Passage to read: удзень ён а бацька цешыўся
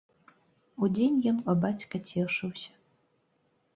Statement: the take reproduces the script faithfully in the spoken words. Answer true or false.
true